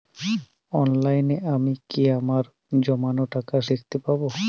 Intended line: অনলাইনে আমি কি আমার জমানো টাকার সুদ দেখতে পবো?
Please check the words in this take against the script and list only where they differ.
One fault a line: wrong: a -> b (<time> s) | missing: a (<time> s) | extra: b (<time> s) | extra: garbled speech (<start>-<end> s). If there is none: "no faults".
missing: সুদ (3.6 s)